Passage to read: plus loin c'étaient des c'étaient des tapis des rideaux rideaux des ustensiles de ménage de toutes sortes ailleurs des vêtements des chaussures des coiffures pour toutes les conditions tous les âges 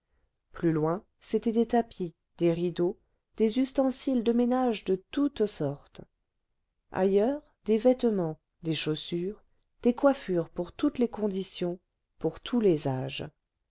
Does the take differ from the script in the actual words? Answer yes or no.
yes